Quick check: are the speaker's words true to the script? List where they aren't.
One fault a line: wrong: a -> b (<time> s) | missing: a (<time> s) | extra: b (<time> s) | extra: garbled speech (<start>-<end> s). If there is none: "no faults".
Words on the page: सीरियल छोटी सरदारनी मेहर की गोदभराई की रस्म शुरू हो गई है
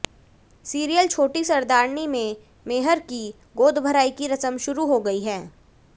extra: में (2.1 s)